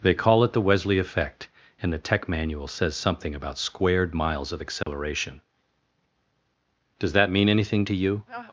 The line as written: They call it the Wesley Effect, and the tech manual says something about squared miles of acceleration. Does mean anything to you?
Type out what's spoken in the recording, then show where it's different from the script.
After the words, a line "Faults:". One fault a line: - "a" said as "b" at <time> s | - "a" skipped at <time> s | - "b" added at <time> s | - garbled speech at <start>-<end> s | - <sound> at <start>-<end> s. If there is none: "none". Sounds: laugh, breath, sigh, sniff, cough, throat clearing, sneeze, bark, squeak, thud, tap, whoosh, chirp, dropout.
They call it the Wesley Effect, and the tech manual says something about squared miles of acceleration. Does that mean anything to you?
Faults:
- dropout at 4.8-4.9 s
- "that" added at 7.1 s